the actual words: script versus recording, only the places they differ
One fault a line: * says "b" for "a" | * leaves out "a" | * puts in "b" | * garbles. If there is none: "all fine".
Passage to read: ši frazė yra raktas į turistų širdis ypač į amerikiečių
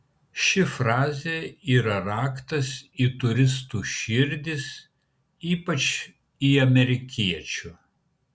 all fine